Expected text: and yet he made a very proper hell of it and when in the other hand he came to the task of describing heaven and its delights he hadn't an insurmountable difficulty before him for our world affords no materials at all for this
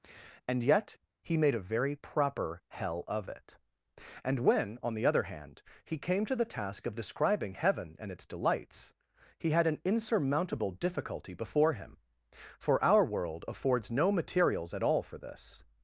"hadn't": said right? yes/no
no